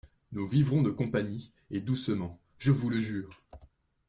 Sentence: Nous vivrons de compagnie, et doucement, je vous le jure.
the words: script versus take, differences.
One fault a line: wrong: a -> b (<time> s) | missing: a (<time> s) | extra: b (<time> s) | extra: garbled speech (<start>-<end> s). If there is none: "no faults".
no faults